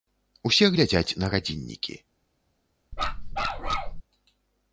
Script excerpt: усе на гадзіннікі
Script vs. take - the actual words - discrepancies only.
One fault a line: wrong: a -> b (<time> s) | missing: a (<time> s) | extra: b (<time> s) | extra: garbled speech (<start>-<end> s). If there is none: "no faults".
extra: глядзяць (0.7 s)